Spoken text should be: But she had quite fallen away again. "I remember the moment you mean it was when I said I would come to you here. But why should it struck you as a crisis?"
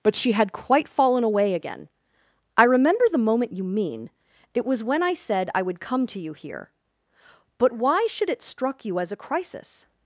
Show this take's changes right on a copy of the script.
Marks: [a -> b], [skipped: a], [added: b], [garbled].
But she had quite fallen away again. "I remember the moment you mean it was when I said I would come to you here. But why should it struck you as a crisis?"